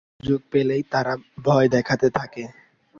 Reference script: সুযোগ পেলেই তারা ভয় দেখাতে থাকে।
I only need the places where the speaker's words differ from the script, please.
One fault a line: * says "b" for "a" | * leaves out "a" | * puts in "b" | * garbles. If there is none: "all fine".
all fine